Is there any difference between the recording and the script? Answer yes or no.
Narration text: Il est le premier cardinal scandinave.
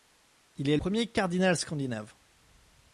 yes